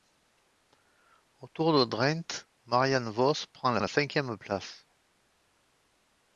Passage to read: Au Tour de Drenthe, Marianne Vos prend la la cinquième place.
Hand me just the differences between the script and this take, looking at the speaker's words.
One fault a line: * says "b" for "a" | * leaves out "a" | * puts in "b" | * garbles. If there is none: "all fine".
all fine